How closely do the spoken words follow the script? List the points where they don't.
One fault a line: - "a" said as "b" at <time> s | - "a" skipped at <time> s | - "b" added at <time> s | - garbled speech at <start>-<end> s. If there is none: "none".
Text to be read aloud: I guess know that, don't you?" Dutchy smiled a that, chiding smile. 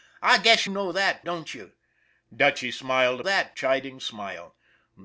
none